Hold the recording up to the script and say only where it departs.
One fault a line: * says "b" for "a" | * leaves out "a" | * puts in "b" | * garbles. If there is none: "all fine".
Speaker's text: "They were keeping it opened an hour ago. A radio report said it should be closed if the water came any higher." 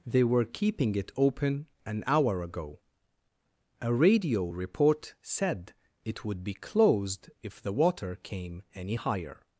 * says "open" for "opened"
* says "would" for "should"